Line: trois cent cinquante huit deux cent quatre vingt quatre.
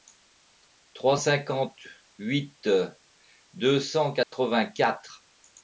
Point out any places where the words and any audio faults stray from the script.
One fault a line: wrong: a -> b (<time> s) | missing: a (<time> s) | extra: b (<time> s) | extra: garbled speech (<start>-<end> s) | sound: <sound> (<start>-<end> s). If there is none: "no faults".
missing: cent (1.1 s)
sound: dropout (4.2-4.3 s)